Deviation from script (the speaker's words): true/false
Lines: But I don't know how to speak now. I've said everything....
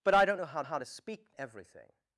true